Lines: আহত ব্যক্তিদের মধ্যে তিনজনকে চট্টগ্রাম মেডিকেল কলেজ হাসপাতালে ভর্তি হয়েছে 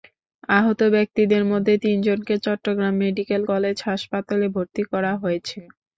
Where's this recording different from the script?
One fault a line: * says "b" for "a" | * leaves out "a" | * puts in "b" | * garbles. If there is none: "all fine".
* puts in "করা"